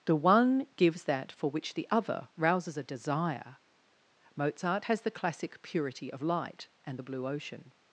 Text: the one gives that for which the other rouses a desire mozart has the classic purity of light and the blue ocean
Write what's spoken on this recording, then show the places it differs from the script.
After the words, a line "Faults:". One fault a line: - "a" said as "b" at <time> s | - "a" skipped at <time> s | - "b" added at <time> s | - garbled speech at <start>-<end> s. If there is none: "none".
the one gives that for which the other rouses a desire mozart has the classic purity of light and the blue ocean
Faults:
none